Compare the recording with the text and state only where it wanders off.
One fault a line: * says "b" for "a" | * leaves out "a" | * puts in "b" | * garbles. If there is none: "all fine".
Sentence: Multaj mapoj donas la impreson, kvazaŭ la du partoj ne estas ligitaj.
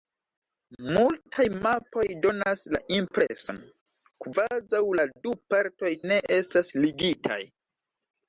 all fine